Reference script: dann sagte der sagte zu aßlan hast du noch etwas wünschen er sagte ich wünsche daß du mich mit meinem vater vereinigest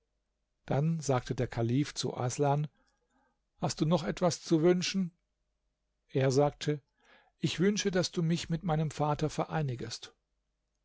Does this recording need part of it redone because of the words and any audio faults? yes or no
yes